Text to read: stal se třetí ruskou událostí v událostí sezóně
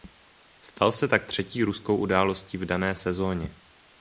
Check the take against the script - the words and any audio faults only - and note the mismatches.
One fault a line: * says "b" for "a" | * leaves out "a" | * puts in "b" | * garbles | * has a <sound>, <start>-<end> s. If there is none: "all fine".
* puts in "tak"
* says "dané" for "událostí"